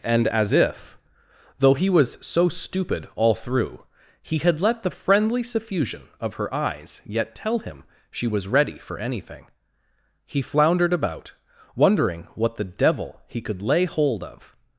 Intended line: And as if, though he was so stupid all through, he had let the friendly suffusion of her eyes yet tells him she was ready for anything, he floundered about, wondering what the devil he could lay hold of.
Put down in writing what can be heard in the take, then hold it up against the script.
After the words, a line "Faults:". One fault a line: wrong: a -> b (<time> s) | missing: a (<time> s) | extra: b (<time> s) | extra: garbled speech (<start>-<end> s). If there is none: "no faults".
And as if, though he was so stupid all through, he had let the friendly suffusion of her eyes yet tell him she was ready for anything, he floundered about, wondering what the devil he could lay hold of.
Faults:
wrong: tells -> tell (7.3 s)